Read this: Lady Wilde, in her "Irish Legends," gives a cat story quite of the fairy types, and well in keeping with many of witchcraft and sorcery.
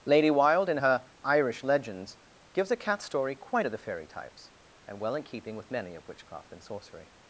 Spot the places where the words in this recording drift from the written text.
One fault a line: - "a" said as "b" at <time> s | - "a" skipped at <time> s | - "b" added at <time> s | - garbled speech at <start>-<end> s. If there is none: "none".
none